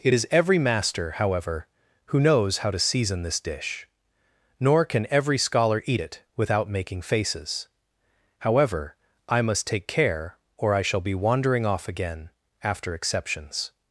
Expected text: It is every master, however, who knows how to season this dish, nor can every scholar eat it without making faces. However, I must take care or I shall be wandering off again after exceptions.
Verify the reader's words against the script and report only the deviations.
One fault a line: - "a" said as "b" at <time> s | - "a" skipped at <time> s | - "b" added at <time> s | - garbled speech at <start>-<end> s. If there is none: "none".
none